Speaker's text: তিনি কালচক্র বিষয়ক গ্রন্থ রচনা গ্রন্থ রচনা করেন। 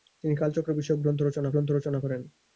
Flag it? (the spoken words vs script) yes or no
no